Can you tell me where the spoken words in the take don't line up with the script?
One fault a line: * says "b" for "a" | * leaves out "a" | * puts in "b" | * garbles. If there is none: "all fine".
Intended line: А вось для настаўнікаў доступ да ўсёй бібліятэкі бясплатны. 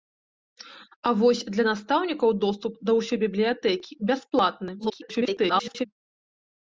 * garbles